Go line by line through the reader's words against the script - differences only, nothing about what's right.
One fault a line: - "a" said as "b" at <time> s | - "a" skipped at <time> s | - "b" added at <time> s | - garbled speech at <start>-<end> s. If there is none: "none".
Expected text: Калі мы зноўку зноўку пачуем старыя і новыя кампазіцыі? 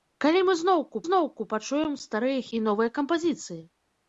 none